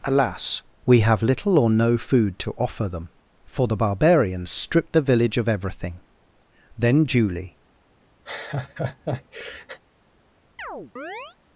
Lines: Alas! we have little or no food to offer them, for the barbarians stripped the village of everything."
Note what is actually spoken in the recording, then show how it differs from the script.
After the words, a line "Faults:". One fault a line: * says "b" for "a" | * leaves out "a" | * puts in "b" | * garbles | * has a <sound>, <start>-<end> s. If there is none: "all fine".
Alas! we have little or no food to offer them, for the barbarians stripped the village of everything." Then Julie
Faults:
* puts in "Then Julie"
* has a laugh, 8.3-9.8 s
* has a chirp, 10.6-11.4 s